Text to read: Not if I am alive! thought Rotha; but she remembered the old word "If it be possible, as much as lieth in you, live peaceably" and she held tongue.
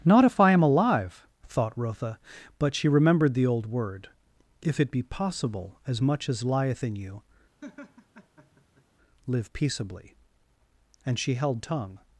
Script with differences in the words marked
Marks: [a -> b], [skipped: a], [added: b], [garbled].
Not if I am alive! thought Rotha; but she remembered the old word "If it be possible, as much as lieth in you, live peaceably" and she held tongue.